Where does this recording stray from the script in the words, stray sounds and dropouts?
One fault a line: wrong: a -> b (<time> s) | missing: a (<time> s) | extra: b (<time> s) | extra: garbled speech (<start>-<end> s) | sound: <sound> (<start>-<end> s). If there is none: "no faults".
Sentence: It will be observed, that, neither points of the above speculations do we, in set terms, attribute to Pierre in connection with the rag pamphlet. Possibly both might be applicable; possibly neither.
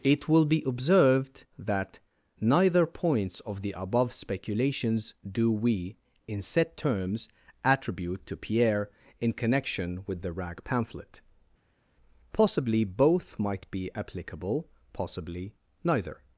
no faults